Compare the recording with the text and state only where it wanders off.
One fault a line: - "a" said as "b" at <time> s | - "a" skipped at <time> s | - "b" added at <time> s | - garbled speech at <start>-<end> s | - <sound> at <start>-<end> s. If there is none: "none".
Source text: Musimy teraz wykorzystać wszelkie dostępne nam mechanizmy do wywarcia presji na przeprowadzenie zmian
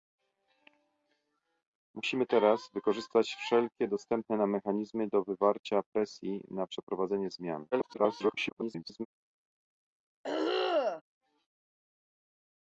- garbled speech at 7.7-9.1 s
- throat clearing at 10.2-11.0 s